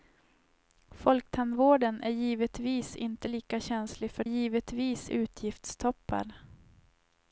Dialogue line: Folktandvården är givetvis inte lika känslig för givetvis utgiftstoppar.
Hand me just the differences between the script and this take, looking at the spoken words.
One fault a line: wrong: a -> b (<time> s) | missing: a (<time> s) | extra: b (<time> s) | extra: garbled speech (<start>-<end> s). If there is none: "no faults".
no faults